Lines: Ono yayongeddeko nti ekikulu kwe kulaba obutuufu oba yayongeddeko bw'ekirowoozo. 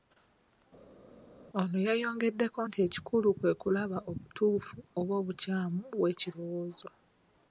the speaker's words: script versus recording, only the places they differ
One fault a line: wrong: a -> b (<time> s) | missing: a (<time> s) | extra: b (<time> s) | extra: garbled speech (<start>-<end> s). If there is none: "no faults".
wrong: yayongeddeko -> obukyamu (5.2 s)